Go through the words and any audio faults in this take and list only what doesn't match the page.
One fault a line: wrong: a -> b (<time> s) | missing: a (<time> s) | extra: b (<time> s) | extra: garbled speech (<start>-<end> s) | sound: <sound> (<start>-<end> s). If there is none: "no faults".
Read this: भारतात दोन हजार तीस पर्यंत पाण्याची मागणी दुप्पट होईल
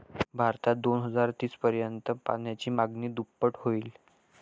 no faults